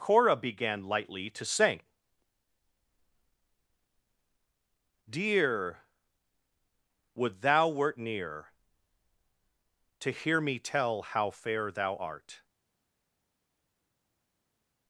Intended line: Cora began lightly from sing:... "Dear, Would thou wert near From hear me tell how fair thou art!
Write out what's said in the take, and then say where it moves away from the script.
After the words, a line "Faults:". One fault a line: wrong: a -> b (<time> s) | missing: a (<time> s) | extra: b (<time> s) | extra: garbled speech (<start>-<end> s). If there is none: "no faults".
Cora began lightly to sing:... "Dear, Would thou wert near To hear me tell how fair thou art!
Faults:
wrong: from -> to (1.3 s)
wrong: From -> To (10.0 s)